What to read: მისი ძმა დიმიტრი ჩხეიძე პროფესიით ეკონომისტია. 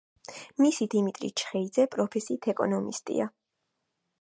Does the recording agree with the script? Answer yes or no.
no